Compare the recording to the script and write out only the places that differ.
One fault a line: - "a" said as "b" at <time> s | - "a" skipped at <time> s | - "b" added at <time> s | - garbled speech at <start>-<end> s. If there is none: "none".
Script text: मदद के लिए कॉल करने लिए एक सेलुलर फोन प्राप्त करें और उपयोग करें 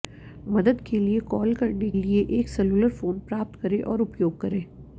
none